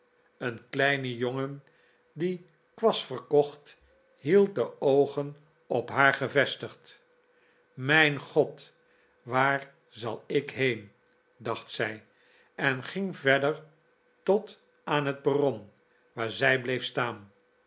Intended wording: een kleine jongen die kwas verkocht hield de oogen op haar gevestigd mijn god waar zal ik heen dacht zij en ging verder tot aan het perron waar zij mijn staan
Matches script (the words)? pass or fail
fail